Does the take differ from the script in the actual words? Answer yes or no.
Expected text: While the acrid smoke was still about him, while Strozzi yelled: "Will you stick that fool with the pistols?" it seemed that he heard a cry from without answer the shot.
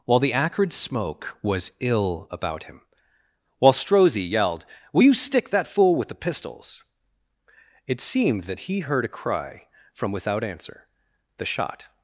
yes